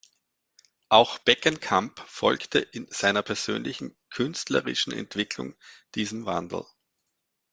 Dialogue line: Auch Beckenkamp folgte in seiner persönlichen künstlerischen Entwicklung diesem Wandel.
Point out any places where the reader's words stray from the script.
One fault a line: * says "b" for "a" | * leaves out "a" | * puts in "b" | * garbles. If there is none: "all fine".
all fine